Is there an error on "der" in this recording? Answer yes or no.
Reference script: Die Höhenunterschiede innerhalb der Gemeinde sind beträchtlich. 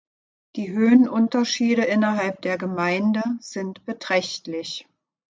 no